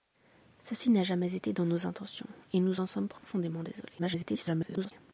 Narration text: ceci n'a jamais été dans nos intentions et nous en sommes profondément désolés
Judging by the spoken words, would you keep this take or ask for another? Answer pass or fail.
fail